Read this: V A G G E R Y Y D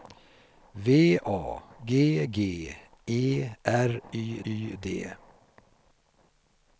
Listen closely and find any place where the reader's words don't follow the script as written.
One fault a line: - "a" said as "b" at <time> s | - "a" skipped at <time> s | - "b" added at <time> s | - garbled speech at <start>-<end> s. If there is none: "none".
none